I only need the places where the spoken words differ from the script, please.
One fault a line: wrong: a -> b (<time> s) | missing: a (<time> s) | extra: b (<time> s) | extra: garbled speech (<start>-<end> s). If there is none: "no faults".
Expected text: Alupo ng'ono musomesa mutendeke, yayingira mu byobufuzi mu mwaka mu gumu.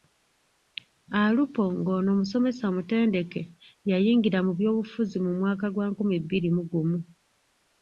extra: gwa nkumi bbiri (5.7 s)